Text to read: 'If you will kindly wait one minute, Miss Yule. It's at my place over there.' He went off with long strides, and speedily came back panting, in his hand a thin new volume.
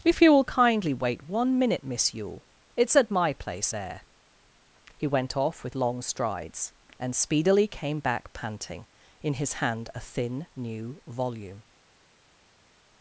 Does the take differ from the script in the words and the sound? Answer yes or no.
yes